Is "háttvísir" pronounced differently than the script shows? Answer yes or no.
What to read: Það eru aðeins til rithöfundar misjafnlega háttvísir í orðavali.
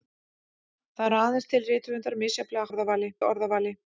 yes